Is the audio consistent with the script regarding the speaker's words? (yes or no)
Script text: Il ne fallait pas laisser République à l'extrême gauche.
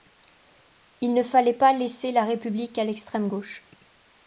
no